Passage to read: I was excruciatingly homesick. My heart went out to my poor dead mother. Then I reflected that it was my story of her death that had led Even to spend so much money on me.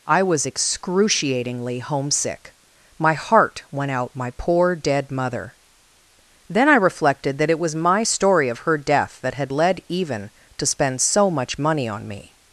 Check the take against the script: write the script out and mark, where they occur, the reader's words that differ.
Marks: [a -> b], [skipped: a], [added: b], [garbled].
I was excruciatingly homesick. My heart went out [skipped: to] my poor dead mother. Then I reflected that it was my story of her death that had led Even to spend so much money on me.